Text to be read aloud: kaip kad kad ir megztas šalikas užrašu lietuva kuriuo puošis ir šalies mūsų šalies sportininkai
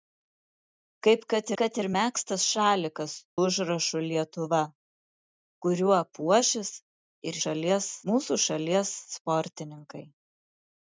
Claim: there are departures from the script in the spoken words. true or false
false